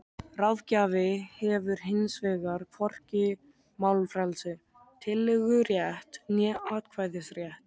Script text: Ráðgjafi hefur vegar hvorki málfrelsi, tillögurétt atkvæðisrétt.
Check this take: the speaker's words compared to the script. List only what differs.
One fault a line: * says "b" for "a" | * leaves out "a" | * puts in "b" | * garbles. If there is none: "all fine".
* puts in "hins"
* puts in "né"